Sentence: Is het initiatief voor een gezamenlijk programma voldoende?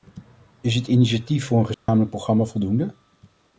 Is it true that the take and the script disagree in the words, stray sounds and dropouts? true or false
true